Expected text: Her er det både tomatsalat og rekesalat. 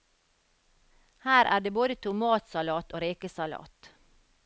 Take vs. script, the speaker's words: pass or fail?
pass